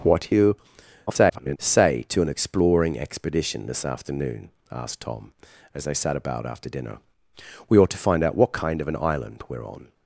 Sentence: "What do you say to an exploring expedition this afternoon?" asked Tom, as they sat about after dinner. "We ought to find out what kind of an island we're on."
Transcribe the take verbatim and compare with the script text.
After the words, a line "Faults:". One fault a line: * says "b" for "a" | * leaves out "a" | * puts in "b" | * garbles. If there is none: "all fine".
"What do you [garbled] say to an exploring expedition this afternoon?" asked Tom, as they sat about after dinner. "We ought to find out what kind of an island we're on."
Faults:
* garbles